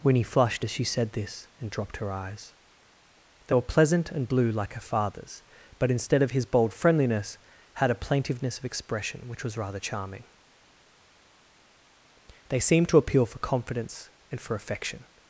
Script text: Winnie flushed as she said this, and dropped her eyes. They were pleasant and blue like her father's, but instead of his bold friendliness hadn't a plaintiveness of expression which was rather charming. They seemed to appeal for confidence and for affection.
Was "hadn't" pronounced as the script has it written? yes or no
no